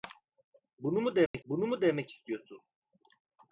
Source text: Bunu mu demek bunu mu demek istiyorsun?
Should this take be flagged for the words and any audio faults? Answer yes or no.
yes